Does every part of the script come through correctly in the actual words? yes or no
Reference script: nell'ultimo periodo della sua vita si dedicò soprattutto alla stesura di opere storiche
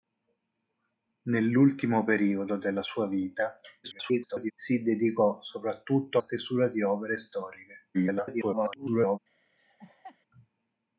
no